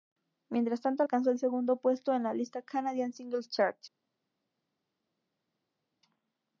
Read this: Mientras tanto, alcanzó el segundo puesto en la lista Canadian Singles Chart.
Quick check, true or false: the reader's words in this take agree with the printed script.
true